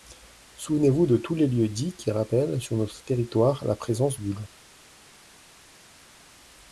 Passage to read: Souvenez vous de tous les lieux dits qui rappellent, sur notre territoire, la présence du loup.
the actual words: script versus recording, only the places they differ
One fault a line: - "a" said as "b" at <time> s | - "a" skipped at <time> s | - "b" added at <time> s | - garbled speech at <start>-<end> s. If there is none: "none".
none